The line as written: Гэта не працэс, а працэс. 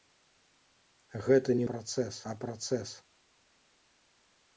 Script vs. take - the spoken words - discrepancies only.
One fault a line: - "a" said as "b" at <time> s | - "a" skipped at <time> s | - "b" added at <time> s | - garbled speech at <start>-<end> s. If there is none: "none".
none